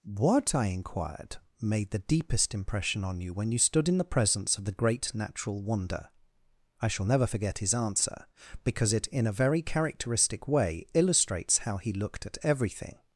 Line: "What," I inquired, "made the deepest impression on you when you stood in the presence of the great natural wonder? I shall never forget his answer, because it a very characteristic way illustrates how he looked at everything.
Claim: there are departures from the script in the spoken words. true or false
true